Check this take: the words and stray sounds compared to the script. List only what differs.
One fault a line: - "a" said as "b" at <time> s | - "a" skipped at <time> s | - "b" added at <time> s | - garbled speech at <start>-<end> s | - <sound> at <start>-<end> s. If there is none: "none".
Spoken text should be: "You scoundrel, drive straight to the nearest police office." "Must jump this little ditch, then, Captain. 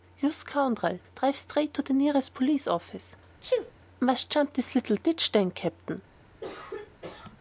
- sneeze at 3.4-3.7 s
- throat clearing at 6.4-7.4 s